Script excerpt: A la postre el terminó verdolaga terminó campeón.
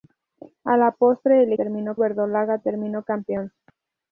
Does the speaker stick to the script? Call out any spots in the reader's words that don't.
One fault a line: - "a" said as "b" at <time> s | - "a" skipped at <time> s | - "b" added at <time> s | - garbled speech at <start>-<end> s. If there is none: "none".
none